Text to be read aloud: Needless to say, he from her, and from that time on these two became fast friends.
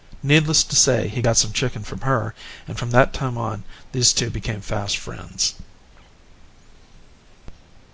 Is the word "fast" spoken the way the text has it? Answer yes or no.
yes